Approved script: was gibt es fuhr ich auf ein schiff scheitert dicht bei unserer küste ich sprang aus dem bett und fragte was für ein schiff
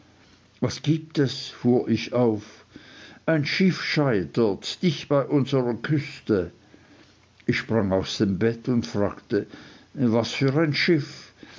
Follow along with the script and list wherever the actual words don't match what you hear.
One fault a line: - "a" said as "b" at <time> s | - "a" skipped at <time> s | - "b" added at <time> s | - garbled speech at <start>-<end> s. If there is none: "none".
none